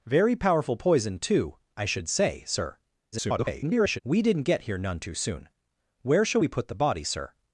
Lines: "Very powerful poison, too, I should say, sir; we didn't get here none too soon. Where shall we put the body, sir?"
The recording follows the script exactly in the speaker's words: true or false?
false